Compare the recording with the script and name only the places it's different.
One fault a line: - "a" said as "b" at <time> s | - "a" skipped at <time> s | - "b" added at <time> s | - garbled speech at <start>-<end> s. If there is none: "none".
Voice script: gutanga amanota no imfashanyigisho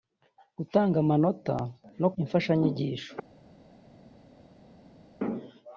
none